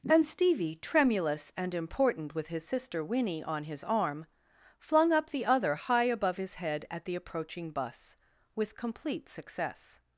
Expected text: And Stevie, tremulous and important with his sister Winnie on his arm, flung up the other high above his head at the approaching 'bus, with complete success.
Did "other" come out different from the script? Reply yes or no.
no